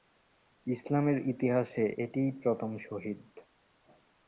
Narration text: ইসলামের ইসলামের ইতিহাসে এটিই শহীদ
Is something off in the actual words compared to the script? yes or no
yes